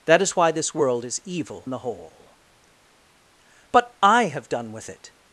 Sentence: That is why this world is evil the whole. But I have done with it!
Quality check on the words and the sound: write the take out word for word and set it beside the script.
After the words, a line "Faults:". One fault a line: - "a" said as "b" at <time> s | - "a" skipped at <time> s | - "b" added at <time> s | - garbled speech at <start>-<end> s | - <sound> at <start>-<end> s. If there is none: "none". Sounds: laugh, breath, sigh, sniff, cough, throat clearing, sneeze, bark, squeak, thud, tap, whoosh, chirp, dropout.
That is why this world is evil the whole. But I have done with it!
Faults:
none